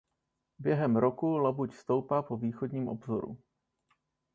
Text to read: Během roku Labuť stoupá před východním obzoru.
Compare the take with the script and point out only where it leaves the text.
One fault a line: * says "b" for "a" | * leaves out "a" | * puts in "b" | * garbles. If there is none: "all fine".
* says "po" for "před"